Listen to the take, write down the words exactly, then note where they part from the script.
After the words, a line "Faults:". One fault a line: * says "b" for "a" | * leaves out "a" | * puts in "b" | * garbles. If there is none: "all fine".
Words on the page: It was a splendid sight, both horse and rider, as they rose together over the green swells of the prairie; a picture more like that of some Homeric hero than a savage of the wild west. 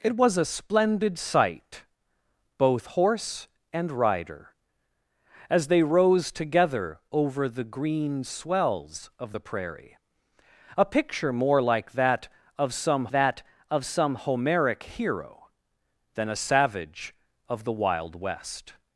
It was a splendid sight, both horse and rider, as they rose together over the green swells of the prairie; a picture more like that of some that of some Homeric hero than a savage of the wild west.
Faults:
* puts in "that of some"